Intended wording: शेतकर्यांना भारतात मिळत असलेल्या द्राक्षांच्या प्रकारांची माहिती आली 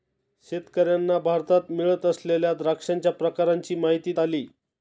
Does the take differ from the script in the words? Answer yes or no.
no